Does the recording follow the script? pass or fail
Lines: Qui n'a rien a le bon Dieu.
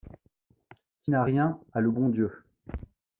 pass